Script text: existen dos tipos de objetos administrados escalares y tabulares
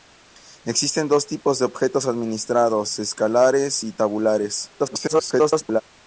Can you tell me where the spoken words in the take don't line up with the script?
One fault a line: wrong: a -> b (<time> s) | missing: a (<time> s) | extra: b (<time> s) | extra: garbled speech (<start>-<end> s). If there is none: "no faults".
extra: garbled speech (4.8-5.8 s)